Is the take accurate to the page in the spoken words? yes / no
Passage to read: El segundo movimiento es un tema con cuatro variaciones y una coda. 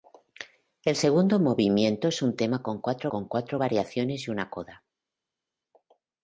no